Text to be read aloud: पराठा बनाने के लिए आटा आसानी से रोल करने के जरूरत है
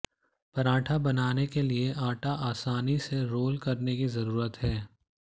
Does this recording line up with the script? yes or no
no